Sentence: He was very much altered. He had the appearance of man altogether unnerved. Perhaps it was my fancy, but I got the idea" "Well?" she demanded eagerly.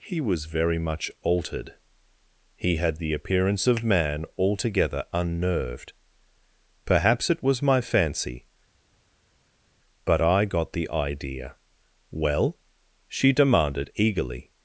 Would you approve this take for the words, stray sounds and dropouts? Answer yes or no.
yes